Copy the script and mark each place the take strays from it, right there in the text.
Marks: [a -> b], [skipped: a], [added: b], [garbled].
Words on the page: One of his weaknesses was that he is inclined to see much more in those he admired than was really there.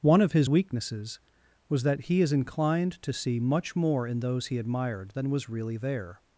One of his weaknesses was that he is inclined to see much more in those he admired than was really there.